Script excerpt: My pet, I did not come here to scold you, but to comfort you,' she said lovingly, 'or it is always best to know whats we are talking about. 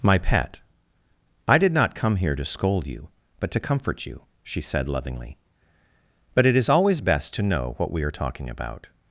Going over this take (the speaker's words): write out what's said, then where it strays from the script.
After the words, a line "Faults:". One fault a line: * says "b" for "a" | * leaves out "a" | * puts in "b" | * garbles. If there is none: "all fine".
My pet, I did not come here to scold you, but to comfort you,' she said lovingly, 'but it is always best to know what we are talking about.
Faults:
* says "but" for "or"
* says "what" for "whats"